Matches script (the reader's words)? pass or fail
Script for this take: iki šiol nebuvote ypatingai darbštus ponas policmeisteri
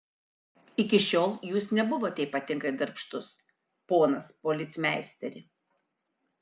fail